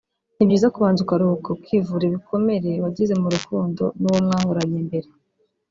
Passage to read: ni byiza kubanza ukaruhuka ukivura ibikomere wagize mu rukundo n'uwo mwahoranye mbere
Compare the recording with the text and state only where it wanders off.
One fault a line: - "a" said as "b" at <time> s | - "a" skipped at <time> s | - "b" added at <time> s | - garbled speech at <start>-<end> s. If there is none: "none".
none